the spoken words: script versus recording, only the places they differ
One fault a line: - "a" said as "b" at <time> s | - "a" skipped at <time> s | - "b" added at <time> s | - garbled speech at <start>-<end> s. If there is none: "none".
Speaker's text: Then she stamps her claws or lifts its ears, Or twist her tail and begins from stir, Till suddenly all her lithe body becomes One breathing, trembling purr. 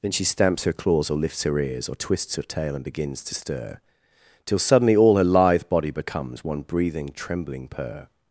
- "its" said as "her" at 1.4 s
- "twist" said as "twists" at 1.9 s
- "from" said as "to" at 3.2 s